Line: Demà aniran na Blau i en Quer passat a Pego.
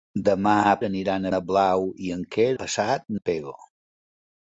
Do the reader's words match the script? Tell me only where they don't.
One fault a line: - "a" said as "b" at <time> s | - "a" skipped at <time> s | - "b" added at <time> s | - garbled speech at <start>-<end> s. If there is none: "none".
none